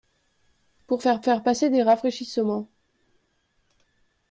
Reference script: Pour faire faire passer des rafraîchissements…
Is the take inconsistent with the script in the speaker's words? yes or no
no